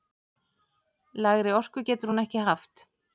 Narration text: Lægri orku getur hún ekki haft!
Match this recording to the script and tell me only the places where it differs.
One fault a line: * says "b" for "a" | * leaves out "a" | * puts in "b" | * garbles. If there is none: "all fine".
all fine